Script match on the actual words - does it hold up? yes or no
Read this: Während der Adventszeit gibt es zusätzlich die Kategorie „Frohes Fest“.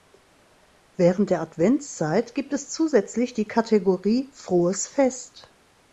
yes